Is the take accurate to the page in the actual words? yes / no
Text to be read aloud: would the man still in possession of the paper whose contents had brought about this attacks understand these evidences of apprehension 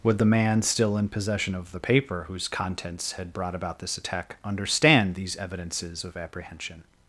no